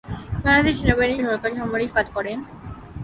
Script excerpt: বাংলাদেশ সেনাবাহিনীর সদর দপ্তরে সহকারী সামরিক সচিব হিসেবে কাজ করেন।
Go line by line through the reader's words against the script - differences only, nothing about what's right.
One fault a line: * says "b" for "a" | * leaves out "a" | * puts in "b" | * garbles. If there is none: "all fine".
* leaves out "সদর দপ্তরে"
* leaves out "সচিব হিসেবে"